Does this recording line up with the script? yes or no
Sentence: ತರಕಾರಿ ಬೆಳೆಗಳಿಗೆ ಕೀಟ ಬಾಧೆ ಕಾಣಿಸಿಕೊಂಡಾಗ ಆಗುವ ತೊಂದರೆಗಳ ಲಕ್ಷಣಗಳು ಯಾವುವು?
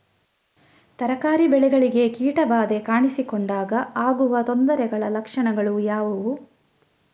yes